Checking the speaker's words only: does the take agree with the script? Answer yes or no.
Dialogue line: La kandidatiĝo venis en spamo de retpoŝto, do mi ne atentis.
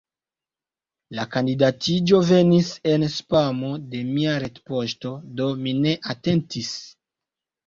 no